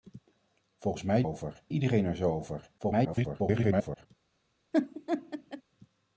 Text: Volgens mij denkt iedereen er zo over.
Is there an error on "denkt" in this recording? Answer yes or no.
yes